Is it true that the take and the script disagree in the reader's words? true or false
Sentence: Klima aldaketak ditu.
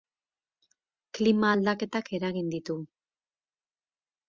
true